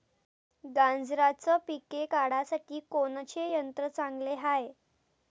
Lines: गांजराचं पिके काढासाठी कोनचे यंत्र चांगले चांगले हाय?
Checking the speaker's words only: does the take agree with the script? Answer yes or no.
no